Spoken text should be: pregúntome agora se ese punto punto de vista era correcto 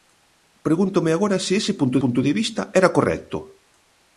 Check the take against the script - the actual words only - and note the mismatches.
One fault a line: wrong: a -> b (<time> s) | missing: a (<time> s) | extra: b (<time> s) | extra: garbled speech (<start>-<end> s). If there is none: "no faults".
no faults